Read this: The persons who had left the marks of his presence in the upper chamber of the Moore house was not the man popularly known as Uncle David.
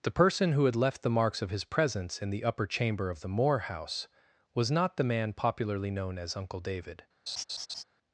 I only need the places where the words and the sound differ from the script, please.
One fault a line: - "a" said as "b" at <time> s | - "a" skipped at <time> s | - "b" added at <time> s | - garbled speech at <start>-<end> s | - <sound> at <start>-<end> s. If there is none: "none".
- "persons" said as "person" at 0.1 s
- laugh at 7.3-7.8 s